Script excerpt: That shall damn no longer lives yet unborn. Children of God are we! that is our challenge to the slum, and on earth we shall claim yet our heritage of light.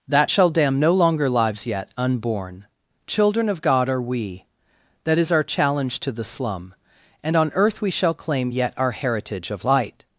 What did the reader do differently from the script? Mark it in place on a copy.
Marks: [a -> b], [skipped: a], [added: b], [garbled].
That shall damn no longer lives yet unborn. Children of God are we! that is our challenge to the slum, and on earth we shall claim yet our heritage of light.